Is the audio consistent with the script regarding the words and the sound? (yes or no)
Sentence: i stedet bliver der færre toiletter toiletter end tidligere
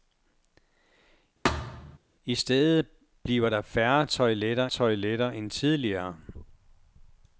no